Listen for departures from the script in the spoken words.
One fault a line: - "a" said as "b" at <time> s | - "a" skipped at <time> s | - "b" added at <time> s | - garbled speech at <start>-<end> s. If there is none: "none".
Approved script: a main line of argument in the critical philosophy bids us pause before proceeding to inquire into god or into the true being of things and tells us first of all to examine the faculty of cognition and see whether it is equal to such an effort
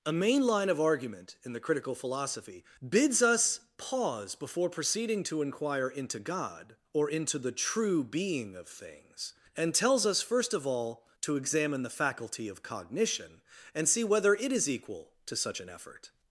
none